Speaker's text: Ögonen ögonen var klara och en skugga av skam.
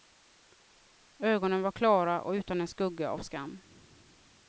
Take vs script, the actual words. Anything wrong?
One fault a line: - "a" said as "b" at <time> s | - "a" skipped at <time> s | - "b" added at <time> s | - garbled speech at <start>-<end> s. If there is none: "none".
- "ögonen" skipped at 1.6 s
- "utan" added at 2.3 s